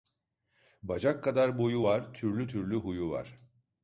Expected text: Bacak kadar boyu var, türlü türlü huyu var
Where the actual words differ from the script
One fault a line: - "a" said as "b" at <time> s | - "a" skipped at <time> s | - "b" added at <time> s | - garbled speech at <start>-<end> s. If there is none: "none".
none